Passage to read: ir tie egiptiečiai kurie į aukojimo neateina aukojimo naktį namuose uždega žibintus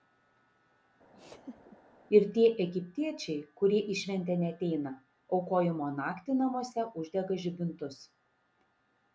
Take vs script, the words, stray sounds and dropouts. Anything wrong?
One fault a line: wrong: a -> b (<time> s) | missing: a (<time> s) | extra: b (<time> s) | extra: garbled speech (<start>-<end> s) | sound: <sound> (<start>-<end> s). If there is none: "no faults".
sound: laugh (1.1-1.8 s)
wrong: aukojimo -> šventę (4.0 s)